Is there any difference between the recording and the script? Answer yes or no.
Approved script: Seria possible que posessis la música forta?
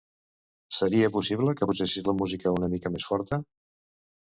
yes